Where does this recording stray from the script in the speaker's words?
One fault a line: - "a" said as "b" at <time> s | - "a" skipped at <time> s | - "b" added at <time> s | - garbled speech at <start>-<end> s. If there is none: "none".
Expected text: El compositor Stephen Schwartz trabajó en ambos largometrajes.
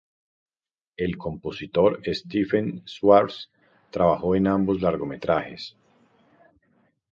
none